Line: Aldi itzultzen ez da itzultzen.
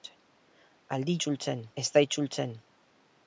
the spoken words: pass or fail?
pass